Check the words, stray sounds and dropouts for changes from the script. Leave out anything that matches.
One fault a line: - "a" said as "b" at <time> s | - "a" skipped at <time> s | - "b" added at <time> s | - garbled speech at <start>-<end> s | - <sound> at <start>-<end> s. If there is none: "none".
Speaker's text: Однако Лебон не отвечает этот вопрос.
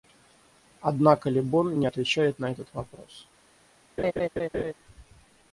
- "на" added at 2.4 s
- laugh at 4.0-4.7 s